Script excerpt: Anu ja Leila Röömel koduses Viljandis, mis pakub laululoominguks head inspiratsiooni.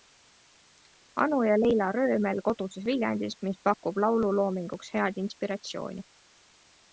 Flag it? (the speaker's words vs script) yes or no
no